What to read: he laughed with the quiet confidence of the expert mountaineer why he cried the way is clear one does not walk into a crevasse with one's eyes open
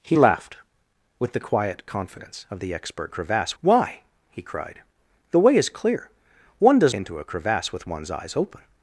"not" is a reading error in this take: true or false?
true